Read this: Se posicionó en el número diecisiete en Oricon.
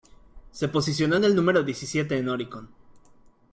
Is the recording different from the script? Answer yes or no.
no